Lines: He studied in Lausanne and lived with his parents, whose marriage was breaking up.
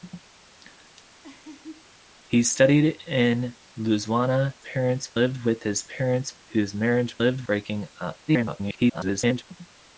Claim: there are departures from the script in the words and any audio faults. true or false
true